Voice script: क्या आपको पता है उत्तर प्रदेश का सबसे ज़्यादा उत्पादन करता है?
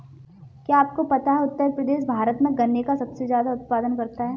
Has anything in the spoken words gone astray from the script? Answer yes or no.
yes